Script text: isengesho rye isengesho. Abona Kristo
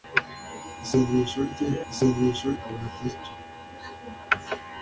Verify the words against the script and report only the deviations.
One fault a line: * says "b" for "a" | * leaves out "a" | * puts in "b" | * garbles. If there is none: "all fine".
all fine